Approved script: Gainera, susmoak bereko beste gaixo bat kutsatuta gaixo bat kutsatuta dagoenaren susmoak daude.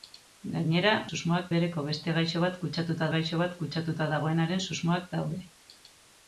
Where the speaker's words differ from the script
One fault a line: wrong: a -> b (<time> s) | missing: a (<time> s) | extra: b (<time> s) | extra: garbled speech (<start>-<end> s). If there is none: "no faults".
no faults